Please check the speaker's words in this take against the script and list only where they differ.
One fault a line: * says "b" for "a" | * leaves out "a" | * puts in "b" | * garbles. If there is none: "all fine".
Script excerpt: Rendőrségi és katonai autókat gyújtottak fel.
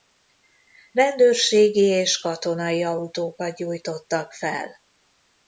all fine